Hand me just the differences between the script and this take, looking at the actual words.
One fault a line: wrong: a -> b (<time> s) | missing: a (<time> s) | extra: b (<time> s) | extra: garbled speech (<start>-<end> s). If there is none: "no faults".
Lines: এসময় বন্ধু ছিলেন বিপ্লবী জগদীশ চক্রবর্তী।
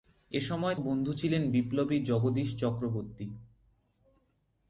no faults